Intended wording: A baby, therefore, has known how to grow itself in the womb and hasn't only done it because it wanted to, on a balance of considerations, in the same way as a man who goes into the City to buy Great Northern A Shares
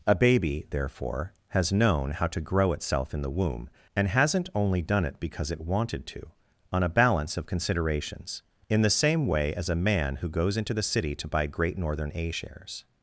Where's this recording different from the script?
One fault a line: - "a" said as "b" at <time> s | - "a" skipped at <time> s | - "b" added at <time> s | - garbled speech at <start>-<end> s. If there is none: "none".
none